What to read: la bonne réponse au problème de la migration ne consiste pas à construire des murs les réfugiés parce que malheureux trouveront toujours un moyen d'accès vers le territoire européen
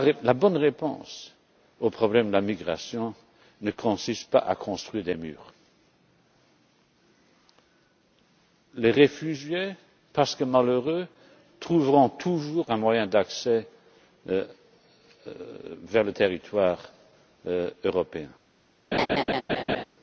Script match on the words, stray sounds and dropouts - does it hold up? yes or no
no